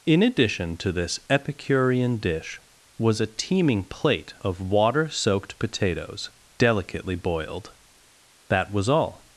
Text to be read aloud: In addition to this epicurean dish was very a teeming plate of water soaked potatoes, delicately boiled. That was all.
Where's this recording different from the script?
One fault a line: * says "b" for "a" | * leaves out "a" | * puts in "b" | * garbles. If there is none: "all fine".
* leaves out "very"